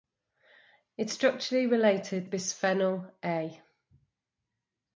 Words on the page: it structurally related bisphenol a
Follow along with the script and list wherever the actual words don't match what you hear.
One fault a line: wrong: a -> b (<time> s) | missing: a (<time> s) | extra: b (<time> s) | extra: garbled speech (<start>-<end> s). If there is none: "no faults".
no faults